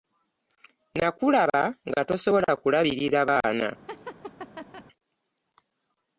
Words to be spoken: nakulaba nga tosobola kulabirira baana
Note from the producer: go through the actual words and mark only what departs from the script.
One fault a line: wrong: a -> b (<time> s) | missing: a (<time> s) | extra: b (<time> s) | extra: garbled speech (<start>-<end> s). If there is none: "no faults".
no faults